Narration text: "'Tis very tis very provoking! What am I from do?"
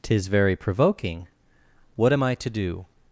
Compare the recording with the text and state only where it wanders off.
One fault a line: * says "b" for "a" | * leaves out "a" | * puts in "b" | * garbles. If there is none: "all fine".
* leaves out "tis very"
* says "to" for "from"